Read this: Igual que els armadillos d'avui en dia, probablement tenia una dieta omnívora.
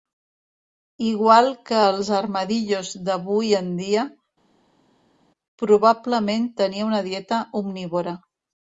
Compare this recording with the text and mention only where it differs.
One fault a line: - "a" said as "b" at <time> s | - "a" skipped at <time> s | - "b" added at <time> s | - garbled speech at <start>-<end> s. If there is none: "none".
none